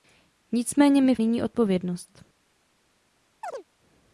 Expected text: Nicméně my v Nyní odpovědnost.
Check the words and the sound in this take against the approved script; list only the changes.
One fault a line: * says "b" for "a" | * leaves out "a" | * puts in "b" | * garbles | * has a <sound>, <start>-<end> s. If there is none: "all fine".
* has a chirp, 3.4-3.6 s